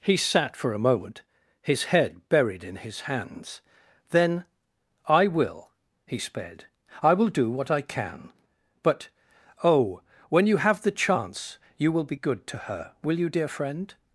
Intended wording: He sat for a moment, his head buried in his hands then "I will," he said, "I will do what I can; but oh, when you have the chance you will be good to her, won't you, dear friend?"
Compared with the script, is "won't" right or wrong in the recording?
wrong